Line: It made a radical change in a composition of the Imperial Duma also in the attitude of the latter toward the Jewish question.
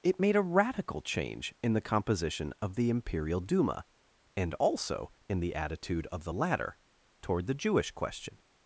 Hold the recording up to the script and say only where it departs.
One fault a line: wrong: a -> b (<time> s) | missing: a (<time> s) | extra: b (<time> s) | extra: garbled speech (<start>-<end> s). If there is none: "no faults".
wrong: a -> the (1.7 s)
extra: and (4.3 s)